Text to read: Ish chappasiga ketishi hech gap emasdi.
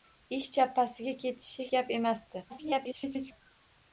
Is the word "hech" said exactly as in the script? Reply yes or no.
no